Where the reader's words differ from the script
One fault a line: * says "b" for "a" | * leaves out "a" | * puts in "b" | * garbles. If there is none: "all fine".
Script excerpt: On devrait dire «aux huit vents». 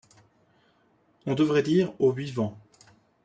all fine